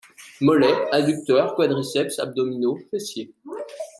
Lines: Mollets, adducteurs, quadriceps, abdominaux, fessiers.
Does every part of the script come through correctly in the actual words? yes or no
yes